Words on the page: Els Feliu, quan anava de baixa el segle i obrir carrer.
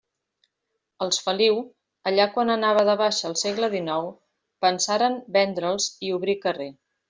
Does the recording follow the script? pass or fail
fail